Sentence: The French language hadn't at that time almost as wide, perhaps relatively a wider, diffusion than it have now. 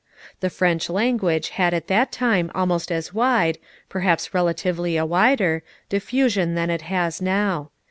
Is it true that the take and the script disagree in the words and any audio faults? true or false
true